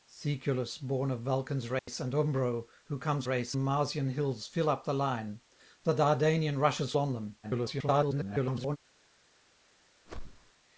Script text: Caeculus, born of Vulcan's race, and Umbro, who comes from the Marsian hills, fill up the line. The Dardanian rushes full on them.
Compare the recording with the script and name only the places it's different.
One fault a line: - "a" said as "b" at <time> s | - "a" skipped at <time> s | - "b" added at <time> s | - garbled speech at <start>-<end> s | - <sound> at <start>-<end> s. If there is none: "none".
- dropout at 1.8-1.9 s
- "from" said as "race" at 3.2 s
- "full" skipped at 6.9 s
- garbled speech at 7.4-8.8 s
- whoosh at 10.1-10.5 s